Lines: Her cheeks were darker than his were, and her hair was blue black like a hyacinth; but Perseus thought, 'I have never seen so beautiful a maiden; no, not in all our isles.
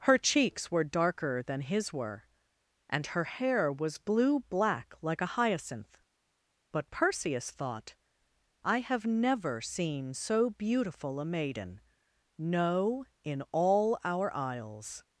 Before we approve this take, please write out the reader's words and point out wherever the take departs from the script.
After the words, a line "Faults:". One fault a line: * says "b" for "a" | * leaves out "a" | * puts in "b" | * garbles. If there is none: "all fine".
Her cheeks were darker than his were, and her hair was blue black like a hyacinth; but Perseus thought, 'I have never seen so beautiful a maiden; no, in all our isles.
Faults:
* leaves out "not"